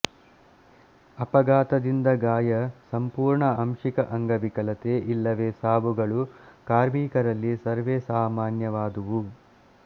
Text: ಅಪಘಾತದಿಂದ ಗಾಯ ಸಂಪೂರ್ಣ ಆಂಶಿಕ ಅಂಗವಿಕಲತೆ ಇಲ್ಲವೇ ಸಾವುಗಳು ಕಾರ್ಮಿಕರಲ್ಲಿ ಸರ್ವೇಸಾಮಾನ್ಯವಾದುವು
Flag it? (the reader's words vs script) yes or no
no